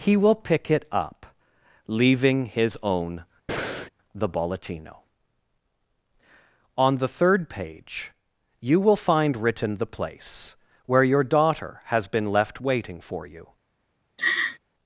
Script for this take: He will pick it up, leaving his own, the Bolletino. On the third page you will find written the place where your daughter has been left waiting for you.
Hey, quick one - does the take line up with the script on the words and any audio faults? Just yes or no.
no